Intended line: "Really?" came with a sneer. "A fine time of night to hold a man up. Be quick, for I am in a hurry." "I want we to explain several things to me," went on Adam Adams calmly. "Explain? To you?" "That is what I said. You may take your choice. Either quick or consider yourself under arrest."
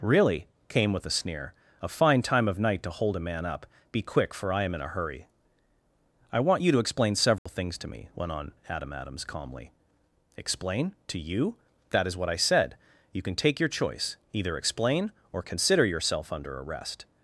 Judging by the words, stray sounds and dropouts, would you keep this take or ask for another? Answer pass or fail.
fail